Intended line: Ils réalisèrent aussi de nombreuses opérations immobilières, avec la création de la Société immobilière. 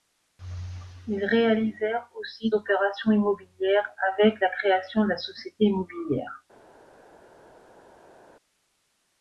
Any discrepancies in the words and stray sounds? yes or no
yes